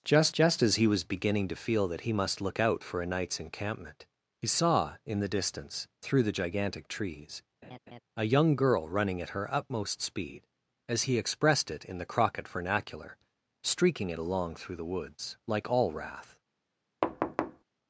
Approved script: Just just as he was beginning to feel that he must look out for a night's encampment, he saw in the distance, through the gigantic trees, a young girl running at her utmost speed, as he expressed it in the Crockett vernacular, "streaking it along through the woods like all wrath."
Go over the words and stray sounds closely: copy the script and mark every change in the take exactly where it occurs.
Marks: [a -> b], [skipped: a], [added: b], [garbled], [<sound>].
Just just as he was beginning to feel that he must look out for a night's encampment, he saw in the distance, through the gigantic trees, [laugh] a young girl running at her utmost speed, as he expressed it in the Crockett vernacular, "streaking it along through the woods like all wrath." [thud]